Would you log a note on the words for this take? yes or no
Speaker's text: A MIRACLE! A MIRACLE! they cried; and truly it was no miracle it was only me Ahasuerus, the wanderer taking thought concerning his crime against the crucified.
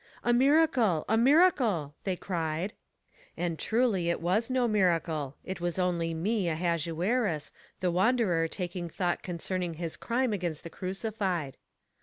no